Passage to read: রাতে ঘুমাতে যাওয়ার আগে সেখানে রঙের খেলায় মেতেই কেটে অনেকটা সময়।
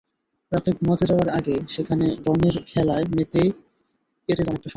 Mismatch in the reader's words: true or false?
false